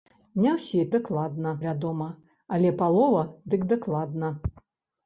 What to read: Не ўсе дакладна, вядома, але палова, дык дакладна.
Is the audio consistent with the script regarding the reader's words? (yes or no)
yes